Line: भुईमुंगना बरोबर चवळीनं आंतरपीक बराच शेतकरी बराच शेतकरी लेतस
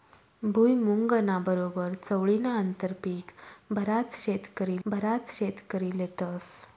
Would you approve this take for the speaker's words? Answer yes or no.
yes